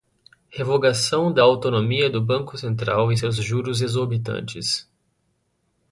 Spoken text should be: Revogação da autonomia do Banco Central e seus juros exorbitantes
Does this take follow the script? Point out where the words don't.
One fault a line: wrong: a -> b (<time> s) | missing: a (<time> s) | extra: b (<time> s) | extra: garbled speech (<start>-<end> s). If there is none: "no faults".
no faults